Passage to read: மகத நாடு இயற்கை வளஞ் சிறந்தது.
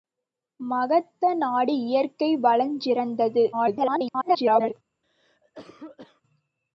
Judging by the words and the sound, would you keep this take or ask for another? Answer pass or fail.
fail